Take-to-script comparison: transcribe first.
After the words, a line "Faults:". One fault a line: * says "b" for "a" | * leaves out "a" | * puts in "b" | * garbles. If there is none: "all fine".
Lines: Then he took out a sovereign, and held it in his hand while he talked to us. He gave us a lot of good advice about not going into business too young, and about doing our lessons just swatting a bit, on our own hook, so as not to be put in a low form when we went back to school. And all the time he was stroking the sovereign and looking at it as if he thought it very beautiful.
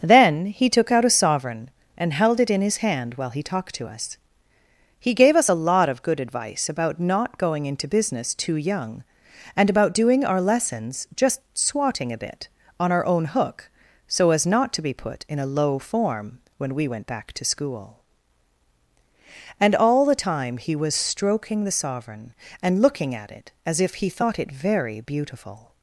Then he took out a sovereign, and held it in his hand while he talked to us. He gave us a lot of good advice about not going into business too young, and about doing our lessons just swatting a bit, on our own hook, so as not to be put in a low form when we went back to school. And all the time he was stroking the sovereign and looking at it as if he thought it very beautiful.
Faults:
all fine